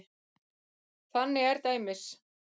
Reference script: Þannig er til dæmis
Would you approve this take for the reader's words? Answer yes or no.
no